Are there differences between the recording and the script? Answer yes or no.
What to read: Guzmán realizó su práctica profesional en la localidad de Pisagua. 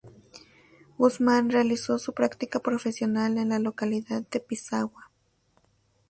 no